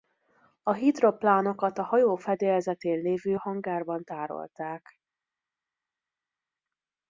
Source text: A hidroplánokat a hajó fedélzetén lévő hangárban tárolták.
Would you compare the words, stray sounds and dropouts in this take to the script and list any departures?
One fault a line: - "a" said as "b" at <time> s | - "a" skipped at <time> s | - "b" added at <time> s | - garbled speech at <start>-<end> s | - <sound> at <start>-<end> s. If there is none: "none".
none